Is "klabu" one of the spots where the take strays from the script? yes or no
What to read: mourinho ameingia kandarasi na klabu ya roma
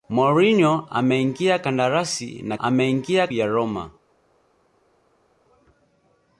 yes